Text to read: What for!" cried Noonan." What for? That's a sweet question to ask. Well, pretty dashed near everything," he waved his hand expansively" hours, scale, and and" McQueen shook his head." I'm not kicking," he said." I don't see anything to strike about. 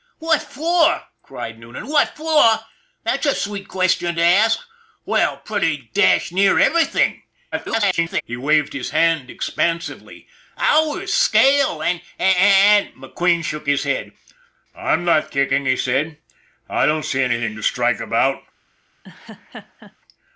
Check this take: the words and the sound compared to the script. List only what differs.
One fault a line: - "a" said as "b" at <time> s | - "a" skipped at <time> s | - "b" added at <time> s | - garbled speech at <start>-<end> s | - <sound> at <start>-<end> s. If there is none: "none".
- garbled speech at 7.5-8.2 s
- laugh at 19.0-20.0 s